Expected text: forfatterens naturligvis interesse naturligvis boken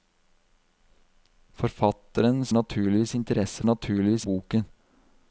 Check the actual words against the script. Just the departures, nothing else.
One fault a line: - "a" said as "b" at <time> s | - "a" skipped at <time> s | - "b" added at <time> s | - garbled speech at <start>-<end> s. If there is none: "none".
none